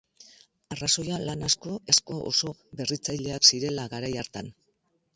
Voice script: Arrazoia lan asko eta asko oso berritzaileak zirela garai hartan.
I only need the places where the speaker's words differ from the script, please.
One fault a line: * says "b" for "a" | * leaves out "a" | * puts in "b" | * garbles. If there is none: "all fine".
* leaves out "eta"